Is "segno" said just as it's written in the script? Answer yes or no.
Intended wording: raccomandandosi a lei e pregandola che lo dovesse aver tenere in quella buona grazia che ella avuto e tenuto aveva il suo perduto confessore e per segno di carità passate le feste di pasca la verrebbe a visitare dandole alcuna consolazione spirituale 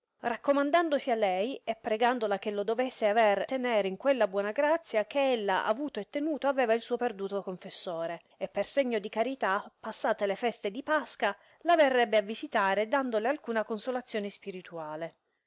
yes